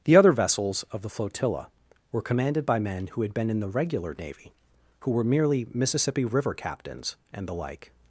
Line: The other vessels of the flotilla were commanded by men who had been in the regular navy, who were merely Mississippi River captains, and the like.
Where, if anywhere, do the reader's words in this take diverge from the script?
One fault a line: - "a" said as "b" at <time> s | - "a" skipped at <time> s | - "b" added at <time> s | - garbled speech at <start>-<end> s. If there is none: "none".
none